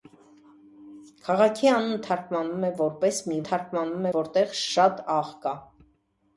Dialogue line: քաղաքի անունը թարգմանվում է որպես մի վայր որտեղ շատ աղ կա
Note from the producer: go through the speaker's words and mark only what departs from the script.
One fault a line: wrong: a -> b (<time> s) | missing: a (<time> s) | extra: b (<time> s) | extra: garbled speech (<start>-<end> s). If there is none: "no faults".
wrong: վայր -> թարգմանվում (3.5 s)